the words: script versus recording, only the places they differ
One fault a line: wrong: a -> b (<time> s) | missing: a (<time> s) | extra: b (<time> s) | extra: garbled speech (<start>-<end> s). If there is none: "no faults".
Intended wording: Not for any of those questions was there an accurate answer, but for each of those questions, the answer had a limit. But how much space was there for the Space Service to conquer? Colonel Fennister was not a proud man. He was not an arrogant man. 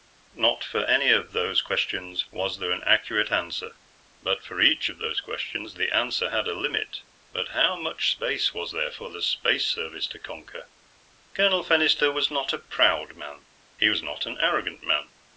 no faults